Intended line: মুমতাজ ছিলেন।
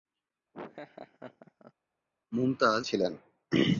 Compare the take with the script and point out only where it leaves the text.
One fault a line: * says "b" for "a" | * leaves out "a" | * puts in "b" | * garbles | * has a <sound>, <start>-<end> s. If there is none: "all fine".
* has a laugh, 0.5-1.7 s